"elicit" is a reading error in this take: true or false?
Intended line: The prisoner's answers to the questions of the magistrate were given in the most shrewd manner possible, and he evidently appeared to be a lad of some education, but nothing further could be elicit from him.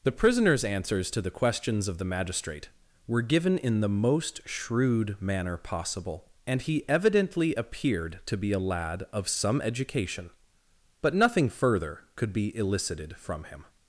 true